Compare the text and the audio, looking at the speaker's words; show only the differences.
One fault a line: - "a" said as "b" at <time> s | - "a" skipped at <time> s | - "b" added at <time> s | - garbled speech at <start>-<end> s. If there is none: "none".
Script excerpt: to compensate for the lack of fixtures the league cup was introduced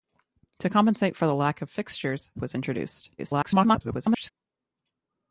- "the league cup" skipped at 2.3 s
- garbled speech at 3.2-4.3 s